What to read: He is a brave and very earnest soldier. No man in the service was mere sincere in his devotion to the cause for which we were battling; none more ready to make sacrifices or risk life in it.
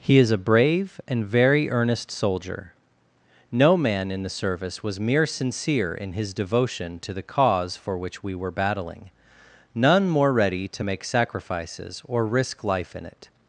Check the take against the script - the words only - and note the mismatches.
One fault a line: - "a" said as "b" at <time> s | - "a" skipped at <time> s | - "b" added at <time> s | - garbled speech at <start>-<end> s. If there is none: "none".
none